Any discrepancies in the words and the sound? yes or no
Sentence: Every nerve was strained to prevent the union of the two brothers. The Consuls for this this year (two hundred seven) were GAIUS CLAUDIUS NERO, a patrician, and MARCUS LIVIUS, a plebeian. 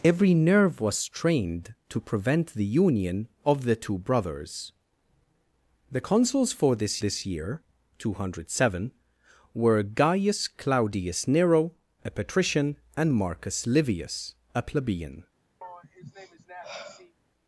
yes